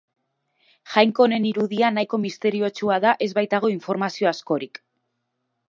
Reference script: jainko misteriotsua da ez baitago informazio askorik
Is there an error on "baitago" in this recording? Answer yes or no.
no